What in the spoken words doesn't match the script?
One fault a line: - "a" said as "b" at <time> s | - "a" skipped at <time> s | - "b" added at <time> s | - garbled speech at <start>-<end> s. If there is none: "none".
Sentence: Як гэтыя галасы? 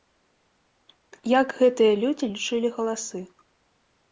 - "людзі лічылі" added at 2.0 s